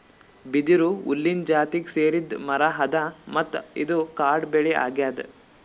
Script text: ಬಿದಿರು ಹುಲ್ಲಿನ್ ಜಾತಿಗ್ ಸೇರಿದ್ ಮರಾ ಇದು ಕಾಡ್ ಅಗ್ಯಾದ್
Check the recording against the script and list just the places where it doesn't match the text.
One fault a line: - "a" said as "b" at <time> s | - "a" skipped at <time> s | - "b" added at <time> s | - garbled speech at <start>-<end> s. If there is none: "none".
- "ಅದಾ ಮತ್ತ್" added at 2.8 s
- "ಬೆಳಿ" added at 4.5 s